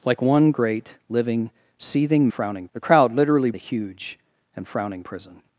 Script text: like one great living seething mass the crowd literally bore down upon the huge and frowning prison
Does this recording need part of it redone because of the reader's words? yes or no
yes